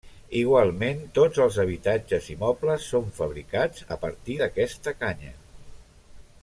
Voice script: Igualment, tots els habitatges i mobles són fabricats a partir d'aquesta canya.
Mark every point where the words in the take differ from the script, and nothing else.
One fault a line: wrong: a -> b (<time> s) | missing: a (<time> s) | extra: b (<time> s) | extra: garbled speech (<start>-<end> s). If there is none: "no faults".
no faults